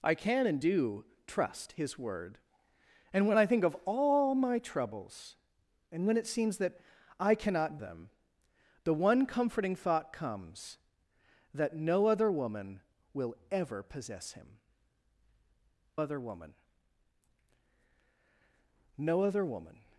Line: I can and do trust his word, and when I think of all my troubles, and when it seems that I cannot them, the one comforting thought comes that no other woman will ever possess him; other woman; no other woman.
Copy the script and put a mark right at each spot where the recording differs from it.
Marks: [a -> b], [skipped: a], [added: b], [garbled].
I can and do trust his word, and when I think of all my troubles, and when it seems that I cannot them, the one comforting thought comes that no other woman will ever possess him; other woman; no other woman.